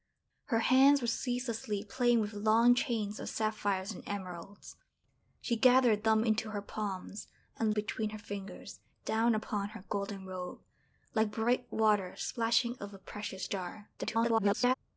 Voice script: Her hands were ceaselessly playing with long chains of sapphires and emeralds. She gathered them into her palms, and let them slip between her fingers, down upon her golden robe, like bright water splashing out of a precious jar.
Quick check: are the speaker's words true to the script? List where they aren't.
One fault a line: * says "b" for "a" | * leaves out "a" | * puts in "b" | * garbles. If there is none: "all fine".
* leaves out "let them slip"
* leaves out "out"
* garbles